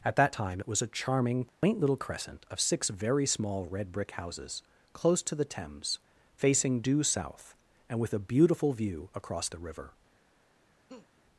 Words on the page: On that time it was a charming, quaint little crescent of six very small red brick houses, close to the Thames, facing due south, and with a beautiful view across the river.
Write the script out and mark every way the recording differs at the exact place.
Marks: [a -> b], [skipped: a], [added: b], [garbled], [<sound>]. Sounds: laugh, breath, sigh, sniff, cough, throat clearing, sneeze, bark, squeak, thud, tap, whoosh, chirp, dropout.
[On -> At] that time it was a charming, quaint [dropout] little crescent of six very small red brick houses, close to the Thames, facing due south, and with a beautiful view across the river. [laugh]